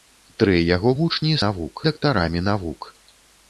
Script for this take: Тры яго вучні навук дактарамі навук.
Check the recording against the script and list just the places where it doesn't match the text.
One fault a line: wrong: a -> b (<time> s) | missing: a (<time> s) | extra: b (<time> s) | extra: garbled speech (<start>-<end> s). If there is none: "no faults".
no faults